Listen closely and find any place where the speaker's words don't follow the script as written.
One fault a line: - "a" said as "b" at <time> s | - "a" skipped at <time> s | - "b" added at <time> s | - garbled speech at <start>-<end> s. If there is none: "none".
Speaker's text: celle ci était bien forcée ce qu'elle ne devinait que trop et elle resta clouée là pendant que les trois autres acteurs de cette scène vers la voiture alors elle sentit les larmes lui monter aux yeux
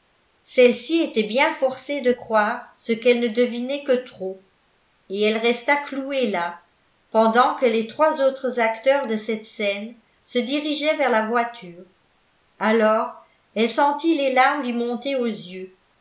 - "de croire" added at 2.0 s
- "se dirigeaient" added at 10.2 s